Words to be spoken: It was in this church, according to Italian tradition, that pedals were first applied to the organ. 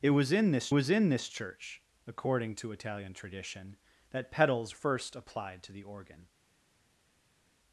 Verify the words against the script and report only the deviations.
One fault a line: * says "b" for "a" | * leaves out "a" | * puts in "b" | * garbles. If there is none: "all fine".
* puts in "was in this"
* leaves out "were"